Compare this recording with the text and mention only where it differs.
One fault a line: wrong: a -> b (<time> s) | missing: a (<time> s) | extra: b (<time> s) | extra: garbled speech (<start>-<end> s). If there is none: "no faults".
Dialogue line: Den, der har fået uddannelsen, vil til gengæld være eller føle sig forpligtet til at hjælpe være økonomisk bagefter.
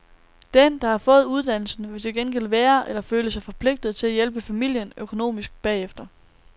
wrong: være -> familien (4.4 s)